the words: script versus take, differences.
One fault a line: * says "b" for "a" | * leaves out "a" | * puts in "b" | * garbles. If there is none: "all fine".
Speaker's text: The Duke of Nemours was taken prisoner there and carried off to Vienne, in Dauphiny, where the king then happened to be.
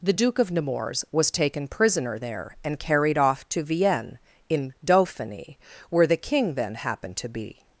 all fine